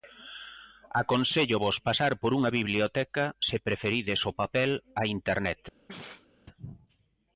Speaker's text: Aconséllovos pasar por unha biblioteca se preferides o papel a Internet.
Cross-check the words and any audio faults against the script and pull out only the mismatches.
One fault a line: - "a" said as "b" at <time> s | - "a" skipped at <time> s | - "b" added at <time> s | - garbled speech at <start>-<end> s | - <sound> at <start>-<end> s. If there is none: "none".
- sneeze at 5.9-6.3 s